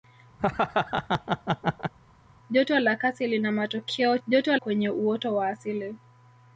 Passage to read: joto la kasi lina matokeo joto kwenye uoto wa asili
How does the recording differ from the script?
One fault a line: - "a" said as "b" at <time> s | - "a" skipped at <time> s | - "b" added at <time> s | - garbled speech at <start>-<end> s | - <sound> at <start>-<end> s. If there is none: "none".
- laugh at 0.4-1.9 s